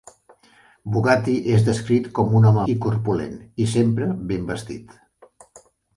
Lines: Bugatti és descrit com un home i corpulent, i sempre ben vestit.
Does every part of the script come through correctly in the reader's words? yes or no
yes